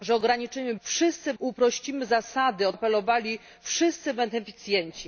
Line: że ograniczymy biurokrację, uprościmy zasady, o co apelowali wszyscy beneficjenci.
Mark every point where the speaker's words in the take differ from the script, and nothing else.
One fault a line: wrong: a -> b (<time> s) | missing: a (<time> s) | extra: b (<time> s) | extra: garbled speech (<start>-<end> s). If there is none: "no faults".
wrong: biurokrację -> wszyscy (0.8 s)
missing: co (2.7 s)